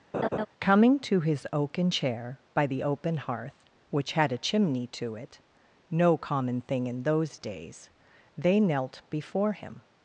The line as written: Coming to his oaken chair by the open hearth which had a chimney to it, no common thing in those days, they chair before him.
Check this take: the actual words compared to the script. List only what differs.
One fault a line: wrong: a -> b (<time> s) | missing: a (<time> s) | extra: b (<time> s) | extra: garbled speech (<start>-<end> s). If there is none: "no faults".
wrong: chair -> knelt (8.6 s)